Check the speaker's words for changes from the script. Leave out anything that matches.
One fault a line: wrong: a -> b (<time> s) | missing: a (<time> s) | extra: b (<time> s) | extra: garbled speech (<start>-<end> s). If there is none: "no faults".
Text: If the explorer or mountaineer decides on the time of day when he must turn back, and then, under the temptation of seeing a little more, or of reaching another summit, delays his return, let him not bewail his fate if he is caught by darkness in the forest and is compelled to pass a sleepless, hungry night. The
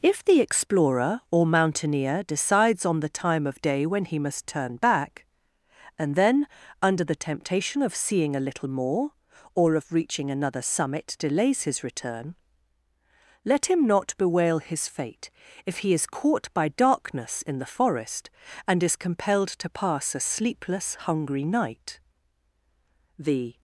no faults